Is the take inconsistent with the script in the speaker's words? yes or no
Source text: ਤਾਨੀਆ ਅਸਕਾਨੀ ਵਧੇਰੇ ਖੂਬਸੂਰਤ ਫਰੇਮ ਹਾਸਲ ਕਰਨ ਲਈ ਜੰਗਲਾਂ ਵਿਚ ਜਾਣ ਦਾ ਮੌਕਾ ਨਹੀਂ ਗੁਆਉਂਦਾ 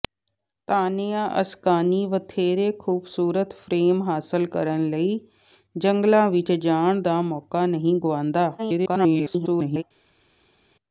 yes